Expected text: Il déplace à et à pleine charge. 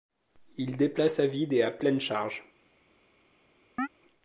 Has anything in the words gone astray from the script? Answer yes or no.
yes